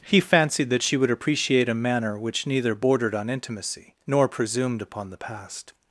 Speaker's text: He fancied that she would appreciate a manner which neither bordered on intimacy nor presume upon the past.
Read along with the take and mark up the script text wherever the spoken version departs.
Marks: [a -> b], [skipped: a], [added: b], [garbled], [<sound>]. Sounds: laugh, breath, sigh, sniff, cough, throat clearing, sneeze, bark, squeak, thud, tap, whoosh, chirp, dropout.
He fancied that she would appreciate a manner which neither bordered on intimacy nor [presume -> presumed] upon the past.